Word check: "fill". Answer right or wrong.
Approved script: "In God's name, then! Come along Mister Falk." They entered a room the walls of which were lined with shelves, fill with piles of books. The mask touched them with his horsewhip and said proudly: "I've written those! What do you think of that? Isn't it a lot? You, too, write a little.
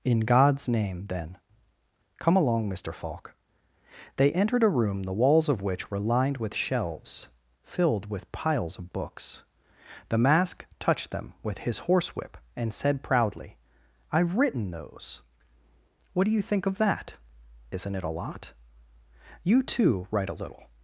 wrong